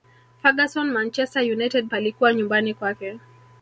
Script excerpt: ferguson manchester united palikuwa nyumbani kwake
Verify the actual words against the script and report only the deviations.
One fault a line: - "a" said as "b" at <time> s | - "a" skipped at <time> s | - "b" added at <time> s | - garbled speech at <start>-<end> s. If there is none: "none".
none